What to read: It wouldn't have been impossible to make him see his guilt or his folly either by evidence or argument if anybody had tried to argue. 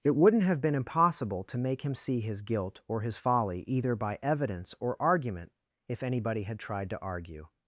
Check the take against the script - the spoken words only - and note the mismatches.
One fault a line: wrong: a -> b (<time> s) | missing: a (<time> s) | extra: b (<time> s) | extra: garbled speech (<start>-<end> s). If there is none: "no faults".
no faults